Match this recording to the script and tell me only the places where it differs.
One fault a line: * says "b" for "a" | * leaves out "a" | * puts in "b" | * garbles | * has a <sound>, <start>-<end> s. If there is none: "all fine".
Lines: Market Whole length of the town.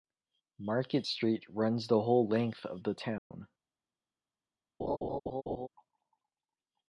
* puts in "Street runs the"
* has a dropout, 3.2-3.3 s
* has a laugh, 4.8-5.7 s